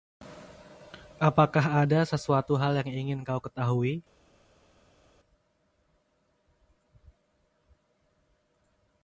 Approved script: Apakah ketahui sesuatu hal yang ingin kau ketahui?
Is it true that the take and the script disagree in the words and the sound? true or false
true